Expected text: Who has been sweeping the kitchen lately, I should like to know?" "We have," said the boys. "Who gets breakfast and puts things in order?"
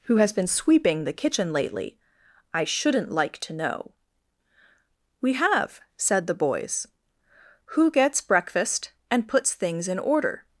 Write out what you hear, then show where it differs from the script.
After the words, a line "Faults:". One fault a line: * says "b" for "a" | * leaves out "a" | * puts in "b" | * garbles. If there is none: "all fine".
Who has been sweeping the kitchen lately, I shouldn't like to know?" "We have," said the boys. "Who gets breakfast and puts things in order?"
Faults:
* says "shouldn't" for "should"